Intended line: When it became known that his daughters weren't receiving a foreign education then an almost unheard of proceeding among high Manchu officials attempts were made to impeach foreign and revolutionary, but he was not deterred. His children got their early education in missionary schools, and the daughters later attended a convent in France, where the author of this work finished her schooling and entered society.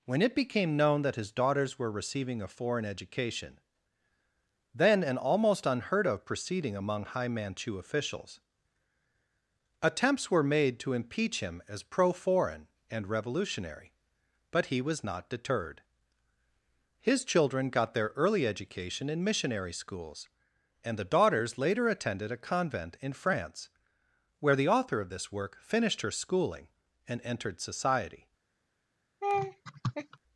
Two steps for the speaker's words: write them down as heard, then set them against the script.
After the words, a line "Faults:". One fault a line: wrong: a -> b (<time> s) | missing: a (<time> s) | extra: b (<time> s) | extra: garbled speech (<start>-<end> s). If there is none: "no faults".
When it became known that his daughters were receiving a foreign education then an almost unheard of proceeding among high Manchu officials attempts were made to impeach him as pro foreign and revolutionary, but he was not deterred. His children got their early education in missionary schools, and the daughters later attended a convent in France, where the author of this work finished her schooling and entered society.
Faults:
wrong: weren't -> were (1.8 s)
extra: him as pro (11.4 s)